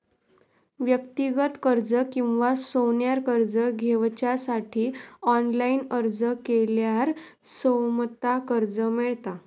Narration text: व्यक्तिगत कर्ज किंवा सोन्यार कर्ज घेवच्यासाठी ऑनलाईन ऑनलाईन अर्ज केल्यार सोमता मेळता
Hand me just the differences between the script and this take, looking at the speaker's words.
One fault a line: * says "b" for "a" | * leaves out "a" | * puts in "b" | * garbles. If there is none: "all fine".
* leaves out "ऑनलाईन"
* puts in "कर्ज"